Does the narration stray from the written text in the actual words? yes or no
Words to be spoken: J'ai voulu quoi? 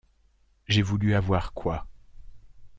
yes